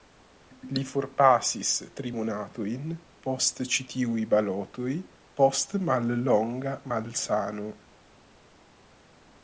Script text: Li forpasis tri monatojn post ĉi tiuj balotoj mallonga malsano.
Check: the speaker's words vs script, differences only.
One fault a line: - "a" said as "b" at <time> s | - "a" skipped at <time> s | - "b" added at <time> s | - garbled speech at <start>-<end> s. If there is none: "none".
- "post" added at 5.4 s